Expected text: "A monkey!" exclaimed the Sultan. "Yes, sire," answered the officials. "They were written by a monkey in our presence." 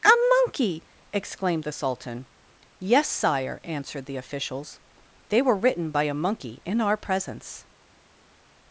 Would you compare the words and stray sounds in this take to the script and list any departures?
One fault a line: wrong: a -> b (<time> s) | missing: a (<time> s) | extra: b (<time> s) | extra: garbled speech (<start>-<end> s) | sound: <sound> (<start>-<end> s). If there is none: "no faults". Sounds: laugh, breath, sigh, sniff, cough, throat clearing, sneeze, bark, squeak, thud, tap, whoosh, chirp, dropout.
no faults